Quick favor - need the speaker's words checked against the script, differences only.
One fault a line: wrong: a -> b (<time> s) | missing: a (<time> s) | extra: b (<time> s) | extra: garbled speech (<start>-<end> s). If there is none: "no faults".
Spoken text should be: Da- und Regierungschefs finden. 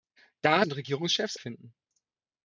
no faults